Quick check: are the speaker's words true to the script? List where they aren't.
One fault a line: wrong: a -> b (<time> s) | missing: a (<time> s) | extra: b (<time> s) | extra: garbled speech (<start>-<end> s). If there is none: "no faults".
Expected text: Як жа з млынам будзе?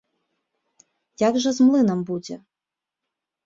no faults